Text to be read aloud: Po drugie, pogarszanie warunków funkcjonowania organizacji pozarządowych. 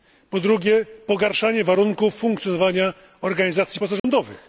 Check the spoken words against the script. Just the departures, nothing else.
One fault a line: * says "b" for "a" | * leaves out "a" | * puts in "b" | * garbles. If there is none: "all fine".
all fine